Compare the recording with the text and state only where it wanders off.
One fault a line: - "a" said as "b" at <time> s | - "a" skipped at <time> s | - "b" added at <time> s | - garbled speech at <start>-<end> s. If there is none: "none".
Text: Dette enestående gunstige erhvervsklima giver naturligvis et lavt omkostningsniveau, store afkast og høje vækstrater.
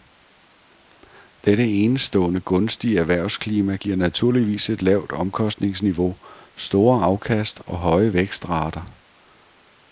none